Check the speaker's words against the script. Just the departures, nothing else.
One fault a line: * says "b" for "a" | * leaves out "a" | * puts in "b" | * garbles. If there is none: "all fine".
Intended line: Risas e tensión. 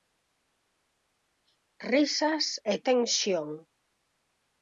all fine